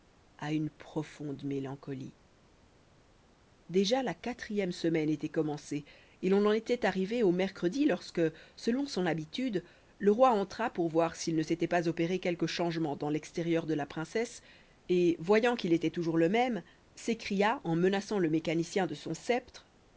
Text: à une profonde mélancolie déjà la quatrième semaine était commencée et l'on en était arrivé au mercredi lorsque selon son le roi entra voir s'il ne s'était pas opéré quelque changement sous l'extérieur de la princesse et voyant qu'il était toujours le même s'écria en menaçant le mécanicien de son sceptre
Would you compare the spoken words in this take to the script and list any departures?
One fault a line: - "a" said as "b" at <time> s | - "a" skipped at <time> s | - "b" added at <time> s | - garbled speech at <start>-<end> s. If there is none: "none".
- "habitude" added at 9.1 s
- "pour" added at 10.7 s
- "sous" said as "dans" at 12.9 s